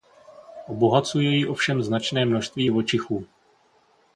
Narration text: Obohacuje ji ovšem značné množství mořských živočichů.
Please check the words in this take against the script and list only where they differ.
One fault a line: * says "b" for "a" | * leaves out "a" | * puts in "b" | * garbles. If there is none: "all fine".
* leaves out "mořských"